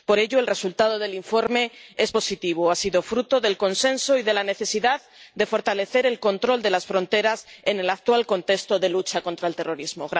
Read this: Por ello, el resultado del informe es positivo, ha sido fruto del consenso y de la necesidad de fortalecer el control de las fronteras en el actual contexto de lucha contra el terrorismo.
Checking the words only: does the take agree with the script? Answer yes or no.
yes